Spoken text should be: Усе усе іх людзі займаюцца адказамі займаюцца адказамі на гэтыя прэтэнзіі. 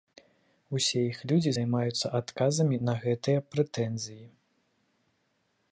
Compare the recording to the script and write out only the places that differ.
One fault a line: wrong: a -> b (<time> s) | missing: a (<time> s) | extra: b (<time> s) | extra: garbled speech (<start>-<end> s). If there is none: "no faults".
missing: усе (1.0 s)
missing: займаюцца адказамі (2.8 s)